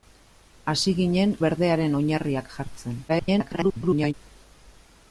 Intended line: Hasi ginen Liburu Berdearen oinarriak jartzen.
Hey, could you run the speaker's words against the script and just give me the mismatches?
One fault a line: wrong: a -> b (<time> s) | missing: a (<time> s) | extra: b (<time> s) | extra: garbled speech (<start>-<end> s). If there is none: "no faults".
missing: Liburu (1.4 s)
extra: garbled speech (3.1-4.1 s)